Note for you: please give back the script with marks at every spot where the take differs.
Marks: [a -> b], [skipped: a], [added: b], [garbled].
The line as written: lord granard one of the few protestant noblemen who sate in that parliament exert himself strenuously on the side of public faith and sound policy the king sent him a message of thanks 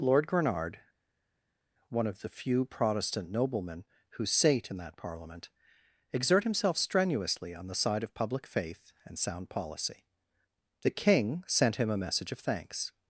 lord granard one of the few protestant noblemen who sate in that parliament exert himself strenuously on the side of public faith and sound policy the king sent him a message of thanks